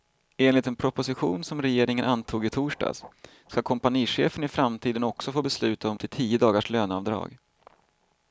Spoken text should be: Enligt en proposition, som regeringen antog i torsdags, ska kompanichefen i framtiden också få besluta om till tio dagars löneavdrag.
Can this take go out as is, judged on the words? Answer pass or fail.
pass